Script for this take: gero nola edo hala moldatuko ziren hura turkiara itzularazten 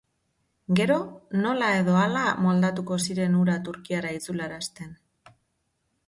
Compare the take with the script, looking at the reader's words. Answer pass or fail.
pass